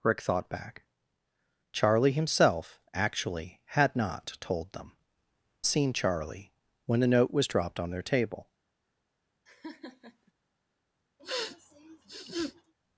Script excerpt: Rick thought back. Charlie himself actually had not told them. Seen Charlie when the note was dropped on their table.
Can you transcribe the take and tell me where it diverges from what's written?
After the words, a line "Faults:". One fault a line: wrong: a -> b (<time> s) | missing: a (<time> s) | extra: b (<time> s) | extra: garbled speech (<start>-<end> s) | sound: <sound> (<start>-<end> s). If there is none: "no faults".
Rick thought back. Charlie himself actually had not told them. Seen Charlie when the note was dropped on their table.
Faults:
sound: laugh (9.5-10.3 s)
sound: sniff (11.2-12.7 s)